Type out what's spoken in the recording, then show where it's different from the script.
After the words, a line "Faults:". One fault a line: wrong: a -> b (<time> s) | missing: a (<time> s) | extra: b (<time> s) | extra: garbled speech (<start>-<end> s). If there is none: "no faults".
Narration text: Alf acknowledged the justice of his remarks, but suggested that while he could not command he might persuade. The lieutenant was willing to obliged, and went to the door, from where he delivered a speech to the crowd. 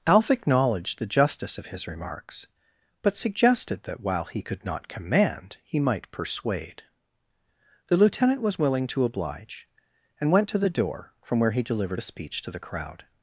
Alf acknowledged the justice of his remarks, but suggested that while he could not command he might persuade. The lieutenant was willing to oblige, and went to the door, from where he delivered a speech to the crowd.
Faults:
wrong: obliged -> oblige (9.0 s)